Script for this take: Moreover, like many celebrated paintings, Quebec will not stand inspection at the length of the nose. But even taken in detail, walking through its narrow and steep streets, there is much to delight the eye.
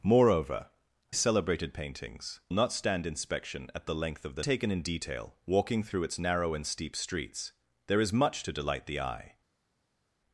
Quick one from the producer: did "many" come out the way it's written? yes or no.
no